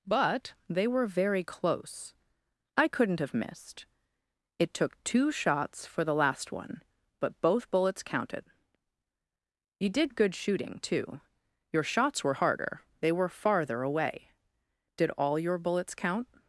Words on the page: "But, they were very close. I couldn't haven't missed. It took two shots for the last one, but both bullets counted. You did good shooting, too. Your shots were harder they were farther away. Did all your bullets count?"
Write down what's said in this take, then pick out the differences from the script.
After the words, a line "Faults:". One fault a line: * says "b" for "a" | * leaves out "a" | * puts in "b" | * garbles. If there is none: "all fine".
"But, they were very close. I couldn't have missed. It took two shots for the last one, but both bullets counted. You did good shooting, too. Your shots were harder they were farther away. Did all your bullets count?"
Faults:
* says "have" for "haven't"